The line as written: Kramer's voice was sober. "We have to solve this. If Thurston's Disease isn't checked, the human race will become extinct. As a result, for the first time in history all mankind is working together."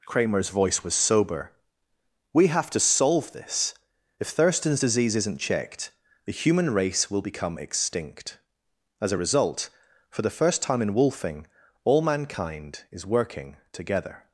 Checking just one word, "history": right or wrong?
wrong